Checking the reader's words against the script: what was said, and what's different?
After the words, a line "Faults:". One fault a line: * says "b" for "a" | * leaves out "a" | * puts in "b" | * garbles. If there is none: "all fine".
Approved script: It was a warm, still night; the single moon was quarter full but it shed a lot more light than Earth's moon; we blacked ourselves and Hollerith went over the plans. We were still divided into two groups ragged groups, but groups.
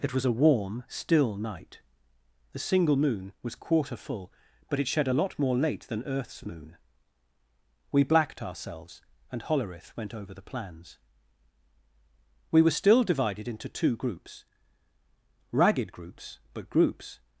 It was a warm, still night; the single moon was quarter full but it shed a lot more late than Earth's moon; we blacked ourselves and Hollerith went over the plans. We were still divided into two groups ragged groups, but groups.
Faults:
* says "late" for "light"